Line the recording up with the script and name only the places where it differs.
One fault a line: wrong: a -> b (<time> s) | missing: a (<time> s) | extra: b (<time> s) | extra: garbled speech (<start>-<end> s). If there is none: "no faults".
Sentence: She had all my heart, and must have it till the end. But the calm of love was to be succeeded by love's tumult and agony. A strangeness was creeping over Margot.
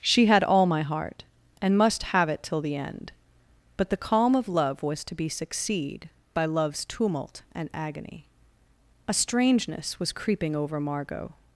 wrong: succeeded -> succeed (5.3 s)